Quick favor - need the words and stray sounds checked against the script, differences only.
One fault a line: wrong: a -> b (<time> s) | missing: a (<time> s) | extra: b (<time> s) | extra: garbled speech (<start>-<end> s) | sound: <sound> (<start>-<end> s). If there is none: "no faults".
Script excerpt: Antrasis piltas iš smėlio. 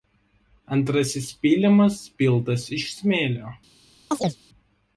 extra: pylimas (1.4 s)
sound: chirp (4.1-4.4 s)